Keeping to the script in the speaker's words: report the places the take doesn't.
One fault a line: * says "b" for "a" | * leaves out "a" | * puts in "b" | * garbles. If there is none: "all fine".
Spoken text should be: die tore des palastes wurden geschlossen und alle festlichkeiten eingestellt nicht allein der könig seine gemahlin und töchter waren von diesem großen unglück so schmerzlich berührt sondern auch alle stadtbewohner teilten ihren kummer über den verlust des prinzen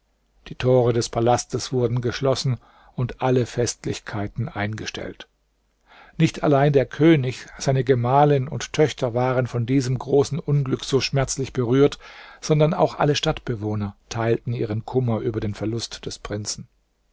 all fine